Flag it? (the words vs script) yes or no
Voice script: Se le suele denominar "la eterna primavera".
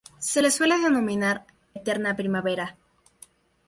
yes